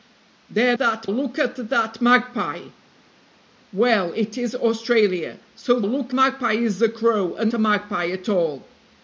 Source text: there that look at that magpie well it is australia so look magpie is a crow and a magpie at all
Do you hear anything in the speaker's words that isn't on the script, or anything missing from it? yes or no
no